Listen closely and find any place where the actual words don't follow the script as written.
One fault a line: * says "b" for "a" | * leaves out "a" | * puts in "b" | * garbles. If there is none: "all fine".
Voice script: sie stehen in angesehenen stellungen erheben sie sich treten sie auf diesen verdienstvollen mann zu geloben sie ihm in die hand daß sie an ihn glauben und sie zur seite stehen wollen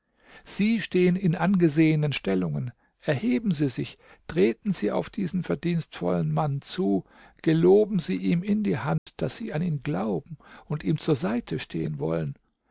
* says "ihm" for "sie"